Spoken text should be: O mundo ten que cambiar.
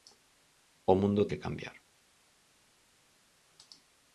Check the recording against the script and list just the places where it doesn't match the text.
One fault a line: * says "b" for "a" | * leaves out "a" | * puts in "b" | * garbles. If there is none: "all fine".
* leaves out "ten"